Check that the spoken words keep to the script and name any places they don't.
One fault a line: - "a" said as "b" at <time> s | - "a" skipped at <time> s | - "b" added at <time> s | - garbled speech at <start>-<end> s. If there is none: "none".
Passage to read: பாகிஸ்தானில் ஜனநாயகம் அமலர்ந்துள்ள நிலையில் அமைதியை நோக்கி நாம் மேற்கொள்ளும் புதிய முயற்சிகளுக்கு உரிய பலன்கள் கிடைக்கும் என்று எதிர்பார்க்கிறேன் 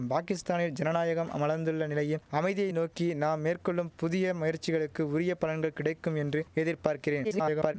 - garbled speech at 7.2-7.7 s